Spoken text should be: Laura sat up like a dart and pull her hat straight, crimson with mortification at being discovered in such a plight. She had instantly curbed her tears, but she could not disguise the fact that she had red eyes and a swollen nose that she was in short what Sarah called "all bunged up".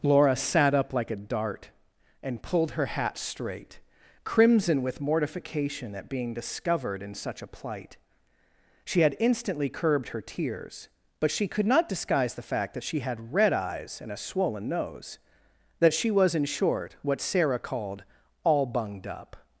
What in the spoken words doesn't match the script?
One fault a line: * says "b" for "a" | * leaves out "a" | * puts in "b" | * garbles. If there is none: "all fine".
* says "pulled" for "pull"